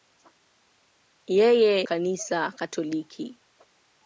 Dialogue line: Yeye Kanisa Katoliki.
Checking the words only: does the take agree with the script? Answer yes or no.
yes